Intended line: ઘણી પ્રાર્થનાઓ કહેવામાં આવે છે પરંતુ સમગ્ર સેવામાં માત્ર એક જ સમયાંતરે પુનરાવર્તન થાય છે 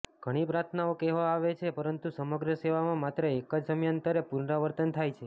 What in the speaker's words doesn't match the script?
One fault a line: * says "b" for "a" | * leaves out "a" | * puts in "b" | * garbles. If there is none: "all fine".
all fine